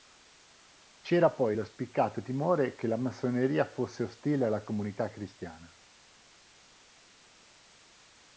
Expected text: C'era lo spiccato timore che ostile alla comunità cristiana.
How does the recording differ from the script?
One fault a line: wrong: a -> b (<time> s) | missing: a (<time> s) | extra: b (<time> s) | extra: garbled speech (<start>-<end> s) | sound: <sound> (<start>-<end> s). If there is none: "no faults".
extra: poi (1.3 s)
extra: la massoneria fosse (2.9 s)